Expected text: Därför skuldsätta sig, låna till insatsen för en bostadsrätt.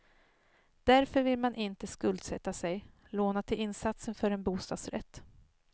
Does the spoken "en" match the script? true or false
true